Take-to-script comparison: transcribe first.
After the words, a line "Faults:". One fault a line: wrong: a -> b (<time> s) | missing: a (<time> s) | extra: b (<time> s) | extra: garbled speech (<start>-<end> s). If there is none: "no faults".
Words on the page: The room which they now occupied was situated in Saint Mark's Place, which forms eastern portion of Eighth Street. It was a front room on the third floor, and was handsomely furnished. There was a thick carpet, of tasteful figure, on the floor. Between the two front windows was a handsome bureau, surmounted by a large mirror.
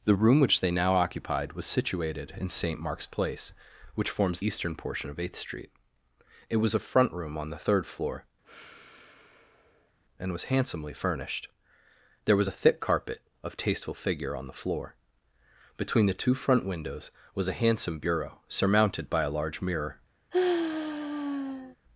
The room which they now occupied was situated in Saint Mark's Place, which forms eastern portion of Eighth Street. It was a front room on the third floor, and was handsomely furnished. There was a thick carpet, of tasteful figure, on the floor. Between the two front windows was a handsome bureau, surmounted by a large mirror.
Faults:
no faults